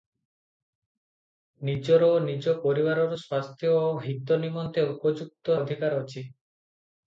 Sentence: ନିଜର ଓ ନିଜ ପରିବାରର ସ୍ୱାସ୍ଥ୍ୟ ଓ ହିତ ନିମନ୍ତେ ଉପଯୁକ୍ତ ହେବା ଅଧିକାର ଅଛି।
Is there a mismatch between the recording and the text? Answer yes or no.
yes